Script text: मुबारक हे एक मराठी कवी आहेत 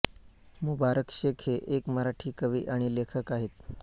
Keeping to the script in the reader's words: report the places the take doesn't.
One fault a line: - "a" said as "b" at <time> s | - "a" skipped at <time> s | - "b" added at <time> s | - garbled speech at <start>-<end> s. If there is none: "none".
- "शेख" added at 1.1 s
- "आणि लेखक" added at 2.7 s